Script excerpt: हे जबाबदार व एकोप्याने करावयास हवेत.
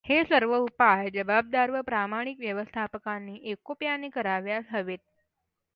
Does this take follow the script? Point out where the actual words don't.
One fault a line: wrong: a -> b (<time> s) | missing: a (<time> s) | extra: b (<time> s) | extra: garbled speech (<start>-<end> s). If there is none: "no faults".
extra: सर्व उपाय (0.2 s)
extra: प्रामाणिक व्यवस्थापकांनी (1.8 s)